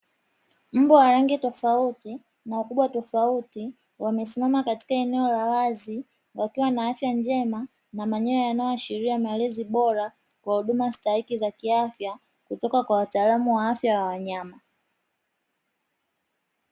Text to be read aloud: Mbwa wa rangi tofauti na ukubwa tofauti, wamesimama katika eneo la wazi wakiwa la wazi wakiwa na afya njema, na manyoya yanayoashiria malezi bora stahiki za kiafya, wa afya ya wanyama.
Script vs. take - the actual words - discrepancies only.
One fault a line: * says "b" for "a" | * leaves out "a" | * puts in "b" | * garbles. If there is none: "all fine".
* leaves out "la wazi wakiwa"
* puts in "kwa huduma"
* puts in "kutoka kwa wataalamu"